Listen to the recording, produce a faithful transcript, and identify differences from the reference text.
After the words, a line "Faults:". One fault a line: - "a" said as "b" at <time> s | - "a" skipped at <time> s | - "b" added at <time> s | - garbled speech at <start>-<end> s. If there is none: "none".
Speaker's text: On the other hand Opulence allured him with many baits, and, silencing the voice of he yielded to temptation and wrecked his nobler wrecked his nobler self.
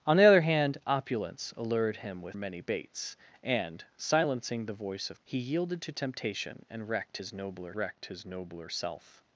On the other hand Opulence allured him with many baits, and, silencing the voice of he yielded to temptation and wrecked his nobler wrecked his nobler self.
Faults:
none